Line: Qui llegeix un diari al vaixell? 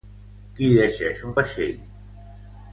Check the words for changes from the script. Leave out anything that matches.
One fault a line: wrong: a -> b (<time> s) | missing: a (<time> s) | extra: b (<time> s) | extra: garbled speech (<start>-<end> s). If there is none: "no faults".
missing: diari al (1.4 s)